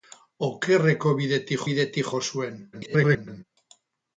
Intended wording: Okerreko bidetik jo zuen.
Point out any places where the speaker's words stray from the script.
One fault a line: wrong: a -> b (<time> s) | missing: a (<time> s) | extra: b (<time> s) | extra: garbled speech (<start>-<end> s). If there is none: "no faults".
extra: bidetik (1.7 s)
extra: garbled speech (2.7-3.4 s)